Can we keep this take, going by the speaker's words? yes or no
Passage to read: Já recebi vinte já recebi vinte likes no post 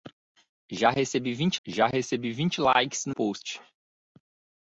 yes